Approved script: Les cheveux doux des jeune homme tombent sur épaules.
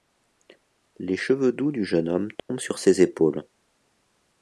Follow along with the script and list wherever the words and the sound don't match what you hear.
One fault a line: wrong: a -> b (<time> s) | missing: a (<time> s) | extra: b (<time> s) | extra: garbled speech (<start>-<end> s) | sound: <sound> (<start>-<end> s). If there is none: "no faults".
wrong: des -> du (1.7 s)
sound: dropout (2.4-2.5 s)
extra: ses (2.8 s)